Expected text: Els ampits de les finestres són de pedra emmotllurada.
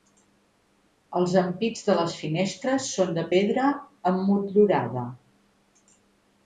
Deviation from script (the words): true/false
false